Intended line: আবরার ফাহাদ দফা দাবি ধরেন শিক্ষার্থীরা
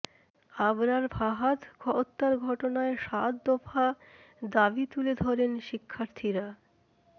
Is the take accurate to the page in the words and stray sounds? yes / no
no